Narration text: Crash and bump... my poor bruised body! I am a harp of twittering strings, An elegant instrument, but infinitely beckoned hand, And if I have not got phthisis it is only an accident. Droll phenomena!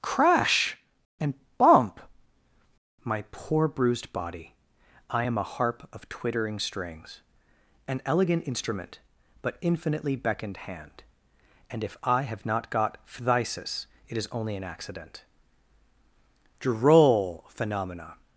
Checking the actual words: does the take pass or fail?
pass